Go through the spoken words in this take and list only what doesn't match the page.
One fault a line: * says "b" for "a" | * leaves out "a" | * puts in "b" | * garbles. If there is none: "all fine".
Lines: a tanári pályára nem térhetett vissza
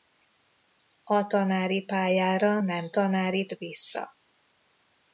* says "tanári" for "térhetett"